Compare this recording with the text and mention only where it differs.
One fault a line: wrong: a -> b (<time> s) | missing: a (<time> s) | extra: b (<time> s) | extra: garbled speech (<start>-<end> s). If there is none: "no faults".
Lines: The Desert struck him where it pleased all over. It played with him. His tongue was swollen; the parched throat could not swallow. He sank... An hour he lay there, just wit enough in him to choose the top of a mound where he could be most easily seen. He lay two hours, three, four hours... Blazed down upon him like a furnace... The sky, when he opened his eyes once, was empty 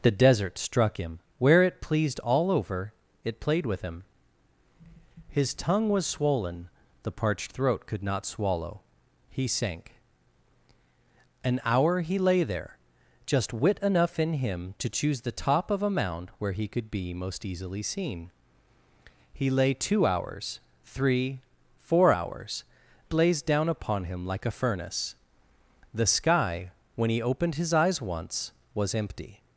no faults